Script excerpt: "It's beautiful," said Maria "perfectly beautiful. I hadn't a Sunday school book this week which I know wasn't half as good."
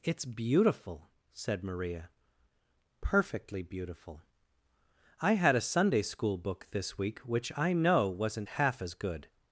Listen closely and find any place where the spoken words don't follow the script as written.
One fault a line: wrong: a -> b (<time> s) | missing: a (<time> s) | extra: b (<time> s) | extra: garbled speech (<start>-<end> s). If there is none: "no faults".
wrong: hadn't -> had (5.3 s)